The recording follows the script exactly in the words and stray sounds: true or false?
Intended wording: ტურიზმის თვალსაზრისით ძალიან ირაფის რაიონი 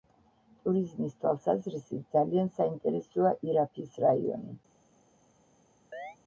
false